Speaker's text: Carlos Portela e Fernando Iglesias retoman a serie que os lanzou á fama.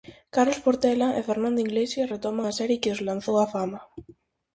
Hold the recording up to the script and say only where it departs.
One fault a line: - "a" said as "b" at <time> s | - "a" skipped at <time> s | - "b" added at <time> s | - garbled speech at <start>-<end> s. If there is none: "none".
none